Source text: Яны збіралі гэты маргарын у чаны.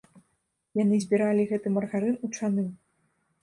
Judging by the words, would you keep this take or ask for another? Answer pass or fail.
pass